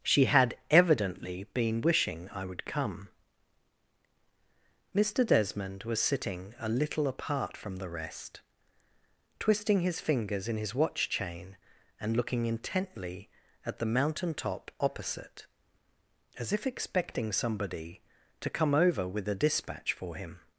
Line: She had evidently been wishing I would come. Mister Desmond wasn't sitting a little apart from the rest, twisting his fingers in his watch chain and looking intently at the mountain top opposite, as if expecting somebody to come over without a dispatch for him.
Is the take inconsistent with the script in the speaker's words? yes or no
yes